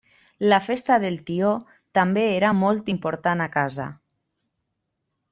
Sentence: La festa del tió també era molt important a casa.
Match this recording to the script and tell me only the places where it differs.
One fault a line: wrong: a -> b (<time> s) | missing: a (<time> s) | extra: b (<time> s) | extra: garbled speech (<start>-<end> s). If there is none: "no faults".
no faults